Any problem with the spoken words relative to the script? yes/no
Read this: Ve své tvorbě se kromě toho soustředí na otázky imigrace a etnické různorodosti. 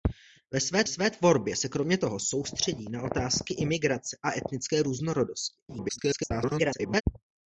yes